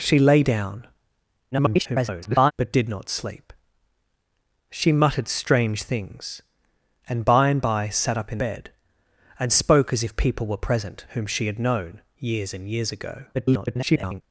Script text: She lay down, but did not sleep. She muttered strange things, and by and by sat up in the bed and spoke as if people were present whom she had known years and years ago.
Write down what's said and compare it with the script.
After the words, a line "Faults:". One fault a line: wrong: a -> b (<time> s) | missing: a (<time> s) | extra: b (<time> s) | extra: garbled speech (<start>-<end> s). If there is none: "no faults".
She lay down, [garbled] but did not sleep. She muttered strange things, and by and by sat up in bed and spoke as if people were present whom she had known years and years ago. [garbled]
Faults:
extra: garbled speech (1.5-2.5 s)
missing: the (8.4 s)
extra: garbled speech (13.3-14.2 s)